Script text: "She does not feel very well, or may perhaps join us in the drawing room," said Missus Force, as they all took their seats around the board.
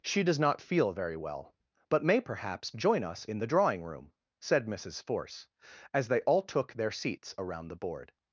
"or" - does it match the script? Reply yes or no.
no